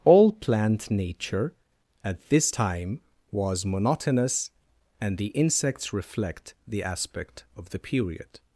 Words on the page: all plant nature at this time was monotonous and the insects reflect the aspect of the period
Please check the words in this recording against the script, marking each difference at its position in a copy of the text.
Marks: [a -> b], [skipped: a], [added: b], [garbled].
all plant nature at this time was monotonous and the insects reflect the aspect of the period